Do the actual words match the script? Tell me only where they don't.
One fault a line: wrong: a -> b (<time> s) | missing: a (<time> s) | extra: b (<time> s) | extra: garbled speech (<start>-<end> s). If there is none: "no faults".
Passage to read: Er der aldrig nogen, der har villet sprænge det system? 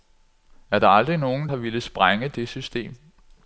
missing: der (1.5 s)